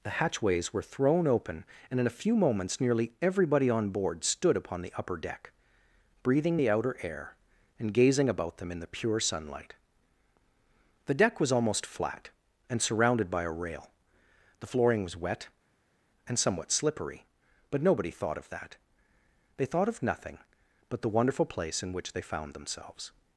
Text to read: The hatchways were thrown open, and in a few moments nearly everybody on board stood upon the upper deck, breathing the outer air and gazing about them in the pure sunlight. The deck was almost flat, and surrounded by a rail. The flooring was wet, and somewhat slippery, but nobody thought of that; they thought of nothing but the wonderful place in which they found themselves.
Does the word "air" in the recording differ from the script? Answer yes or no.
no